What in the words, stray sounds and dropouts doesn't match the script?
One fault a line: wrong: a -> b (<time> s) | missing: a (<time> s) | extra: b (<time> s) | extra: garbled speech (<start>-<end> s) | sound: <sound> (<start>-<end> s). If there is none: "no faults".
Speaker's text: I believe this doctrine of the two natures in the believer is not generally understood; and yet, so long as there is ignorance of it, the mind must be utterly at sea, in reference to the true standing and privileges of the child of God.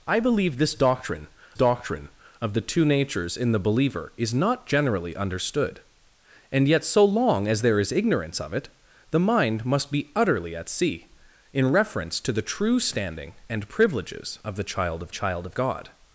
extra: doctrine (1.5 s)
extra: child of (15.1 s)